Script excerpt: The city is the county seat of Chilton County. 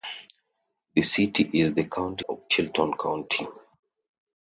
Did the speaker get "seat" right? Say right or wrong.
wrong